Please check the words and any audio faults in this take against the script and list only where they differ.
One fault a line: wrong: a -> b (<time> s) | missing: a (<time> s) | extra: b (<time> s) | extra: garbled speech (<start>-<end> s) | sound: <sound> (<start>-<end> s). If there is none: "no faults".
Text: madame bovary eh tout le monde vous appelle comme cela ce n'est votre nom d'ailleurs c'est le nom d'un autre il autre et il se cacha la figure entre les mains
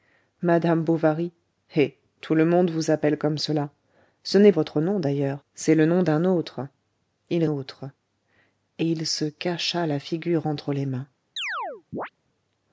sound: chirp (11.4-12.1 s)